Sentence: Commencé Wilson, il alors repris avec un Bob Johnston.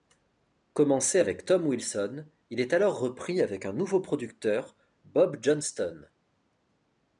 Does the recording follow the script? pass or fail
fail